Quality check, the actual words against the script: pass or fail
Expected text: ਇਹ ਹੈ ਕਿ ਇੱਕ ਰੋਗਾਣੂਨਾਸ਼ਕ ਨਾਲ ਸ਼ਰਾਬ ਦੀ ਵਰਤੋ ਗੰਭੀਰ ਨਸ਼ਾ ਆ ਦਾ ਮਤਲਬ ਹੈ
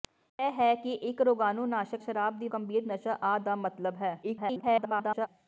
fail